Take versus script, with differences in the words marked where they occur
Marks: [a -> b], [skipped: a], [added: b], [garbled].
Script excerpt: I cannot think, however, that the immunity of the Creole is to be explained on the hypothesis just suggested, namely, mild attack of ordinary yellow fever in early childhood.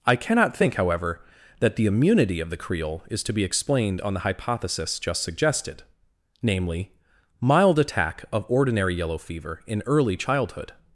I cannot think, however, that the immunity of the Creole is to be explained on the hypothesis just suggested, namely, mild attack of ordinary yellow fever in early childhood.